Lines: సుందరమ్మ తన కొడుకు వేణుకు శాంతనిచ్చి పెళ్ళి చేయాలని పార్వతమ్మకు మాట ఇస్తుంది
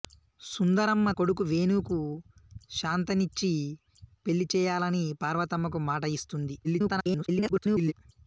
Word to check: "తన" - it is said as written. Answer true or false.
false